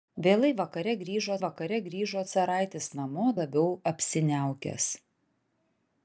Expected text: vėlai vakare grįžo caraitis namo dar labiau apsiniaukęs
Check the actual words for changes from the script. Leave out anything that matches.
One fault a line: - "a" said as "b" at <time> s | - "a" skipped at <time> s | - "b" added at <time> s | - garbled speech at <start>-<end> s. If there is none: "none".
- "vakare grįžo" added at 1.5 s
- "dar" skipped at 3.3 s